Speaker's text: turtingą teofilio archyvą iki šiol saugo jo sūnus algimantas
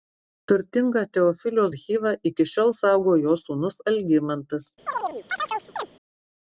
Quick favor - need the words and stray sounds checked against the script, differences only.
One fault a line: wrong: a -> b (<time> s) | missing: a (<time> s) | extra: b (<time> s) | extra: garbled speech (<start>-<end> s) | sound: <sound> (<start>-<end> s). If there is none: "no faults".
sound: chirp (4.9-5.9 s)